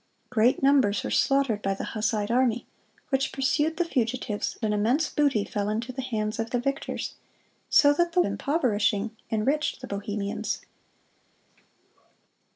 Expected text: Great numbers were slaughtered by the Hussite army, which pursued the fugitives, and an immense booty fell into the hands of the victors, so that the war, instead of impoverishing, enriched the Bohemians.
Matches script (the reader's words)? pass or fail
fail